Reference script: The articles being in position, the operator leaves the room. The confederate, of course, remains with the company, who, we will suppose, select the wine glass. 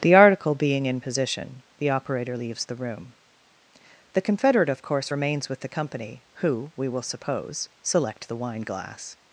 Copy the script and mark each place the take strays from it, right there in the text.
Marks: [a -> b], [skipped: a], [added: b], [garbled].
The [articles -> article] being in position, the operator leaves the room. The confederate, of course, remains with the company, who, we will suppose, select the wine glass.